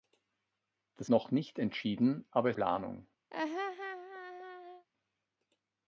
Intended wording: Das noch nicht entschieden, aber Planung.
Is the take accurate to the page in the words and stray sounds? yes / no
no